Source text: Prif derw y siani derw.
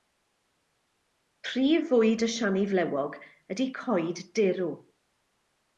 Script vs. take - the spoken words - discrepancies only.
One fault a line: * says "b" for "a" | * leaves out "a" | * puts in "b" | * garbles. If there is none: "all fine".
* says "fwyd" for "derw"
* puts in "flewog ydy coed"